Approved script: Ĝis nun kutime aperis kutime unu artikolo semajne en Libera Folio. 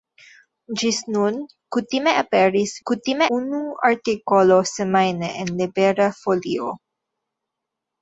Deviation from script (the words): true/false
false